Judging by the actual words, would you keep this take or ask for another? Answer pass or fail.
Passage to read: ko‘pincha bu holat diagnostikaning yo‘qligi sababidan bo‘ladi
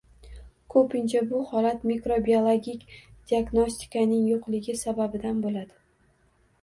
fail